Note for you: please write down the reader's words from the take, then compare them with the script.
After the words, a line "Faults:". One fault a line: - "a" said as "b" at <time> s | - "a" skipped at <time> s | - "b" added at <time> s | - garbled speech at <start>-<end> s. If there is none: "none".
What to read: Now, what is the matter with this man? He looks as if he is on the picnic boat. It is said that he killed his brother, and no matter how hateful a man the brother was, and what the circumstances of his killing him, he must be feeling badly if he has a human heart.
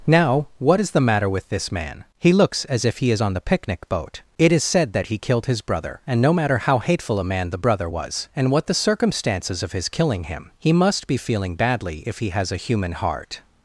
Now, what is the matter with this man? He looks as if he is on the picnic boat. It is said that he killed his brother, and no matter how hateful a man the brother was, and what the circumstances of his killing him, he must be feeling badly if he has a human heart.
Faults:
none